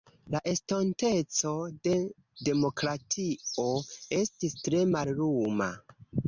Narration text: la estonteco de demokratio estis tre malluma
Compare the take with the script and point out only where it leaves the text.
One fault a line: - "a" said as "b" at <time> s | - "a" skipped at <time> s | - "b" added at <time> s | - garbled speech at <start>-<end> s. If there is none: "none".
none